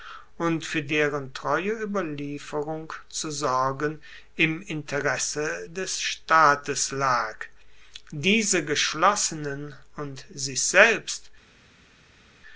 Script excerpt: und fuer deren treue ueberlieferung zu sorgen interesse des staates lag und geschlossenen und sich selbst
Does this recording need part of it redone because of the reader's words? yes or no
yes